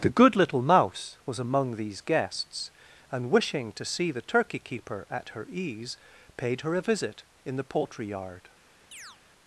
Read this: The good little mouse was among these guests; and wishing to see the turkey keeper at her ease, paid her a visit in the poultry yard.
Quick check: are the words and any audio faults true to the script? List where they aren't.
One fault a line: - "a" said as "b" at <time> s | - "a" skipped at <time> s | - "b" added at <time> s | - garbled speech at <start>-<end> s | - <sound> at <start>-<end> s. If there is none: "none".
- chirp at 8.9-9.2 s